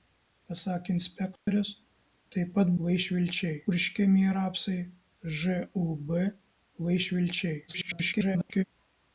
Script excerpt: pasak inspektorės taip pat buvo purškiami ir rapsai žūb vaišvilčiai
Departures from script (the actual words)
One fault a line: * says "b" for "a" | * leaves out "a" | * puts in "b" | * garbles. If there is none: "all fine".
* says "vaišvilčiai" for "buvo"
* garbles